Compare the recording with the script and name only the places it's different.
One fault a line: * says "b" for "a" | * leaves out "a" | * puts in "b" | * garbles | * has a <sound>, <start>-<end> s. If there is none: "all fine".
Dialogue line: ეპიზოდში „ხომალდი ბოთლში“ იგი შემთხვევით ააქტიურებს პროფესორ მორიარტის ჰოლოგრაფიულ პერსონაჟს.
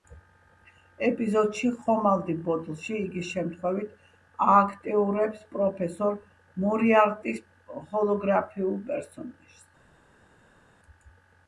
all fine